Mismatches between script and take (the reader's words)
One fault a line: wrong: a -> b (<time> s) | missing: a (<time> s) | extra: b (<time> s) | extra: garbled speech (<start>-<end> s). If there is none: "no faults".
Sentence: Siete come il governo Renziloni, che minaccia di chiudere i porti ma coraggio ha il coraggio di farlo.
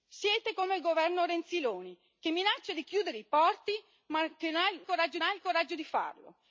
no faults